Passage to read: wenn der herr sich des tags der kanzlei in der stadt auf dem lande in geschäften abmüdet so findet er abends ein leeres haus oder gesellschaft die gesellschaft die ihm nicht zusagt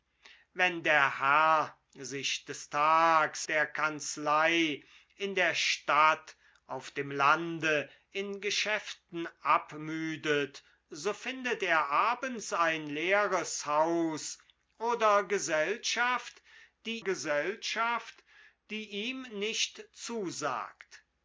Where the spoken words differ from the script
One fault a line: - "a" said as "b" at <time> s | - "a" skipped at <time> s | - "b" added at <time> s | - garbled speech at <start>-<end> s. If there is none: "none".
none